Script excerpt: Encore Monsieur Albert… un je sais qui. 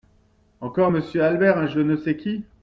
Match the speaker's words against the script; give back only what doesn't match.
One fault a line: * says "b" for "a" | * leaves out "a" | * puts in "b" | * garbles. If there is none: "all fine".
* puts in "ne"